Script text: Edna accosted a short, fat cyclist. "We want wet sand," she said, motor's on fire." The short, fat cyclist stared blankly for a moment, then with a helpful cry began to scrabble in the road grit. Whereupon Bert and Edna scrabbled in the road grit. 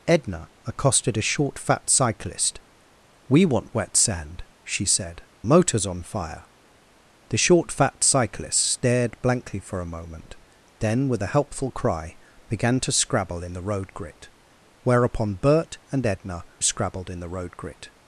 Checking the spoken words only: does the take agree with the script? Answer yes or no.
yes